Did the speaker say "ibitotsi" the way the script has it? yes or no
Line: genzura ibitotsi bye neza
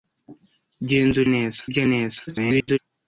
no